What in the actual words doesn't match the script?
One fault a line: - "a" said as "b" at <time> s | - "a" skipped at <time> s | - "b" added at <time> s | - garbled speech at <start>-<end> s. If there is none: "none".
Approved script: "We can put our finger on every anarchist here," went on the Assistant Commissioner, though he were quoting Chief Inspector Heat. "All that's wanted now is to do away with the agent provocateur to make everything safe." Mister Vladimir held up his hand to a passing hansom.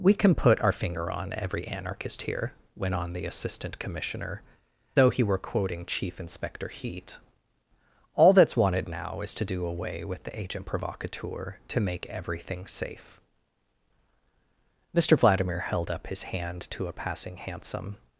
none